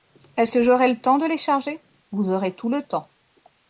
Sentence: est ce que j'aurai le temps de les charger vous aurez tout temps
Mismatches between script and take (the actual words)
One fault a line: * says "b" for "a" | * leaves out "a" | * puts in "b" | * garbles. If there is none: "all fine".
* puts in "le"